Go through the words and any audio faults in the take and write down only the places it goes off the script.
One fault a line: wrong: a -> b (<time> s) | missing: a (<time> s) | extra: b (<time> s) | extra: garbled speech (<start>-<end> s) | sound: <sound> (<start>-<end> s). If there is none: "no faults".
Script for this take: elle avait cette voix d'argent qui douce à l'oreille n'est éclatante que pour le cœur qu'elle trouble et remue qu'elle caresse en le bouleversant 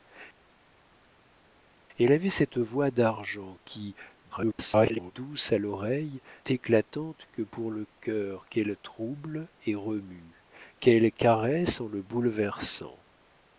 extra: garbled speech (4.3-5.1 s)
missing: n'est (6.2 s)